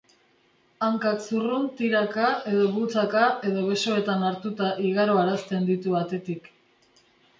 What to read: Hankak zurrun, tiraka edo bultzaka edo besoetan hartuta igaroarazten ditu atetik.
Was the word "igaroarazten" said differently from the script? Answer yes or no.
no